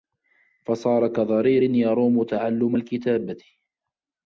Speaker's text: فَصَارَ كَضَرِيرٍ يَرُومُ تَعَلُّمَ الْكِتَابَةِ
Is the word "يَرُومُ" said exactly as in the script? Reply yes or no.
yes